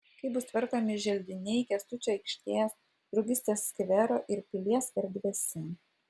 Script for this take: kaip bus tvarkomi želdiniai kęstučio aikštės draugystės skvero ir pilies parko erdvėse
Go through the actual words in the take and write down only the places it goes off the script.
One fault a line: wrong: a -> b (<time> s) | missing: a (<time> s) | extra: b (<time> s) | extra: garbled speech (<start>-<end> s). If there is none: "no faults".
missing: parko (4.9 s)